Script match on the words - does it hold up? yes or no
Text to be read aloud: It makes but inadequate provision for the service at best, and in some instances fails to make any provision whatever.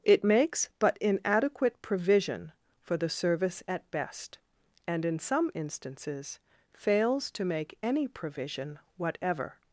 yes